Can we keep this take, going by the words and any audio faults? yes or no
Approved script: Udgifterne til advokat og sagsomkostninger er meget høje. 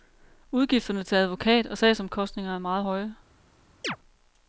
no